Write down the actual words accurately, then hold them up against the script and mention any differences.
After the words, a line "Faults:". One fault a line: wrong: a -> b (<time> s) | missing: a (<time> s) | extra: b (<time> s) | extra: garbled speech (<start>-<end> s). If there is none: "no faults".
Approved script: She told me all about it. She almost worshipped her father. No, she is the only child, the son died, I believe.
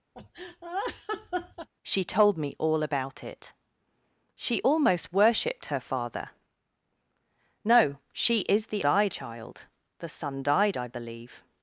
She told me all about it. She almost worshipped her father. No, she is the died child, the son died, I believe.
Faults:
wrong: only -> died (8.8 s)